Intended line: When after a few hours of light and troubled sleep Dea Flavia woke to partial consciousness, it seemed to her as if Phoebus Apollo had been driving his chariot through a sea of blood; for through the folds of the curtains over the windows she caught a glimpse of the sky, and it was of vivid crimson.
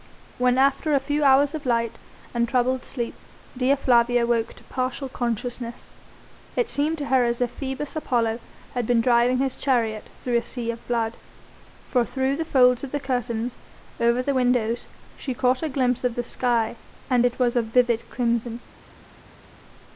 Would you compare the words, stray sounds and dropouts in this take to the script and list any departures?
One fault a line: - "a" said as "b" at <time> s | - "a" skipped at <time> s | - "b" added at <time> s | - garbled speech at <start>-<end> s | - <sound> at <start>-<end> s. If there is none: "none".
none